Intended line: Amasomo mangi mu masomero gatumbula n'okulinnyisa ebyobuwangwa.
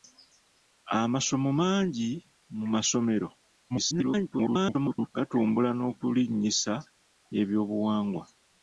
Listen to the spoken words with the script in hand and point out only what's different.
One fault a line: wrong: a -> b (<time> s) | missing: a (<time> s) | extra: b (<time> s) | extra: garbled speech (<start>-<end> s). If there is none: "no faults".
extra: garbled speech (3.7-5.1 s)